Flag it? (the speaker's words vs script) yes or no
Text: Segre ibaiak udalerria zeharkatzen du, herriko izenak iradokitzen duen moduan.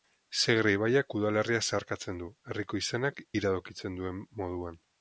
no